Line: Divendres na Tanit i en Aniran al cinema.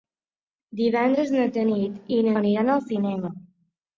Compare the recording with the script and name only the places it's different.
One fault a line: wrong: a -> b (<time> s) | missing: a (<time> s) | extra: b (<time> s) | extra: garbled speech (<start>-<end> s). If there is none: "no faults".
no faults